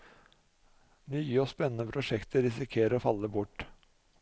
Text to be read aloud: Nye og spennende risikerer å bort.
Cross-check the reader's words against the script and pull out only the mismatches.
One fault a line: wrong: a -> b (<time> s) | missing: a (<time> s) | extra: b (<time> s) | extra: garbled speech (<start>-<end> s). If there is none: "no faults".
extra: prosjekter (1.9 s)
extra: falle (3.0 s)